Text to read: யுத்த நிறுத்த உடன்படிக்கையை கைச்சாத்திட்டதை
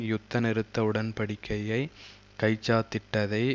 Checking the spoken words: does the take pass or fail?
pass